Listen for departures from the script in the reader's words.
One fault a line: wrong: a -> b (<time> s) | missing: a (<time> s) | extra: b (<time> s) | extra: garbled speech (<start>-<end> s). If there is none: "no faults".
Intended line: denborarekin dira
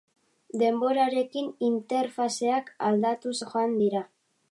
extra: interfazeak aldatuz joan (1.7 s)